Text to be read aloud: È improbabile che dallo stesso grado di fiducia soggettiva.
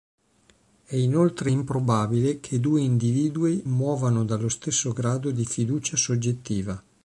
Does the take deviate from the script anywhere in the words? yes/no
yes